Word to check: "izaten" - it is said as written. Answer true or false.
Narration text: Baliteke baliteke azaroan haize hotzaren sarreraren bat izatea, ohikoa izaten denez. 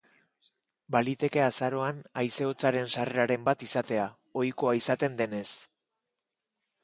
true